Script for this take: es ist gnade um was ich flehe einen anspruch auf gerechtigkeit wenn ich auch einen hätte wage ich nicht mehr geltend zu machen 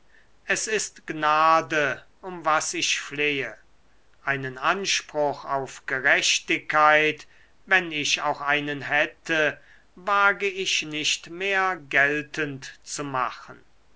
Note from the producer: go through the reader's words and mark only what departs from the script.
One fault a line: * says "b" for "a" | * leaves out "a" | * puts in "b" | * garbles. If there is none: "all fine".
all fine